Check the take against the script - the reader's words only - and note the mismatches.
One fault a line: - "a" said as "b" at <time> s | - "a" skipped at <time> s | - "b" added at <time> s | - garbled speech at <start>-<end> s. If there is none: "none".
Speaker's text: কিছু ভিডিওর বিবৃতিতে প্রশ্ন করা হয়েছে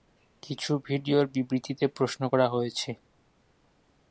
none